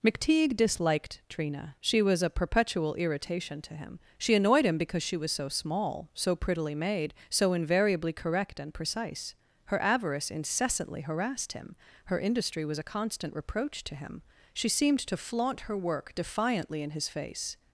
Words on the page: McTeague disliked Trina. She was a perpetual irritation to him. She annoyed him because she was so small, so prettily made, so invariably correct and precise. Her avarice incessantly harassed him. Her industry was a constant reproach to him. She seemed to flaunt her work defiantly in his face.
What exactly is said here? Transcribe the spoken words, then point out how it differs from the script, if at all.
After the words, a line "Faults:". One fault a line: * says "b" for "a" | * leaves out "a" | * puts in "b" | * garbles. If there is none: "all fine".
McTeague disliked Trina. She was a perpetual irritation to him. She annoyed him because she was so small, so prettily made, so invariably correct and precise. Her avarice incessantly harassed him. Her industry was a constant reproach to him. She seemed to flaunt her work defiantly in his face.
Faults:
all fine